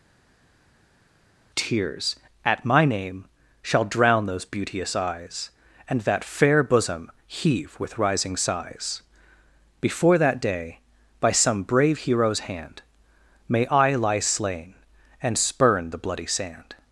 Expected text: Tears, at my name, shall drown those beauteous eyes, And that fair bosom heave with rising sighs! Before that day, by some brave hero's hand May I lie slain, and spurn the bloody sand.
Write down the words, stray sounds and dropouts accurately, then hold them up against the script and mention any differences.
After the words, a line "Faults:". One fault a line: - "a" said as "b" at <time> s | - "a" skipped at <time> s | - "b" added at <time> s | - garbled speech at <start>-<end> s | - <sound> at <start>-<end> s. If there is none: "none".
Tears, at my name, shall drown those beauteous eyes, And that fair bosom heave with rising sighs! Before that day, by some brave hero's hand May I lie slain, and spurn the bloody sand.
Faults:
none